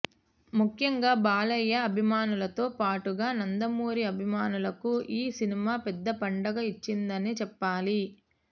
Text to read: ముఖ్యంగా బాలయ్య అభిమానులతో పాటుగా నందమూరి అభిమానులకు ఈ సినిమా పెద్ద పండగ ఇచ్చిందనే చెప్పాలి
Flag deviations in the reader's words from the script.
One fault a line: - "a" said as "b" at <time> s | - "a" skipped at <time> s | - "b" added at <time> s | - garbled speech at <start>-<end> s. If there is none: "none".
none